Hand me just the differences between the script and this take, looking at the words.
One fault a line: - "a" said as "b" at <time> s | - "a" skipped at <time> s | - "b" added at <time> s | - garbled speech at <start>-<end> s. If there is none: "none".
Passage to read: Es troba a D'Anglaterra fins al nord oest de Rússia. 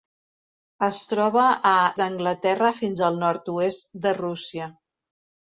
none